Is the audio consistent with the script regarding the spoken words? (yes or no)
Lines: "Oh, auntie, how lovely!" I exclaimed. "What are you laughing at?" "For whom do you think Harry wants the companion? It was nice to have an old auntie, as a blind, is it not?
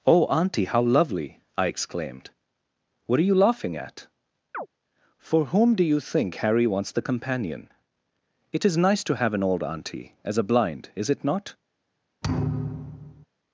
no